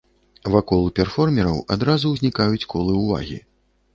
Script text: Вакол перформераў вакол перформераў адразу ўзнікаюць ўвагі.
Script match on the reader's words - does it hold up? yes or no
no